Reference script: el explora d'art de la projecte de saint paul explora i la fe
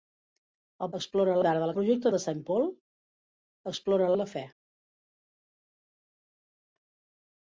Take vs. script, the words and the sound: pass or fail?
pass